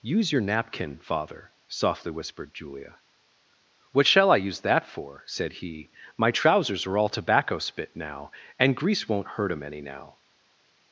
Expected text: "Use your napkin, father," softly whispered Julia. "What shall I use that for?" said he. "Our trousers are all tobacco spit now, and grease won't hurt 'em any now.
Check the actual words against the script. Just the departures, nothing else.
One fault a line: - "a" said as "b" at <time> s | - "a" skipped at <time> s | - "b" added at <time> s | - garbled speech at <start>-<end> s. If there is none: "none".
- "Our" said as "My" at 6.2 s